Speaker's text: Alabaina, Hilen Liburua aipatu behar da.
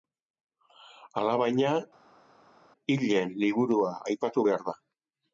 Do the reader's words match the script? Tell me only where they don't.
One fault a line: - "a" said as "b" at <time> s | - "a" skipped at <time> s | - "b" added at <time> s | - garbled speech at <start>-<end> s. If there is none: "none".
none